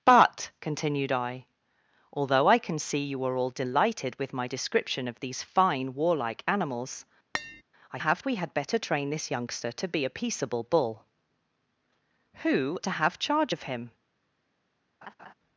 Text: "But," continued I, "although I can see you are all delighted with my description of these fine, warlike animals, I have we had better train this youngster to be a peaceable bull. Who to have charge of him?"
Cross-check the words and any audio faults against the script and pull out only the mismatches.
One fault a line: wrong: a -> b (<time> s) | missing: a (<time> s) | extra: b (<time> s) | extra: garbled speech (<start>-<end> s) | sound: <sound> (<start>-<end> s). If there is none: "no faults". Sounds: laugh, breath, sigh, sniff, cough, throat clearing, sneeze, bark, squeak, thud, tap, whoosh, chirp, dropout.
sound: tap (7.3-7.6 s)
sound: laugh (15.0-15.3 s)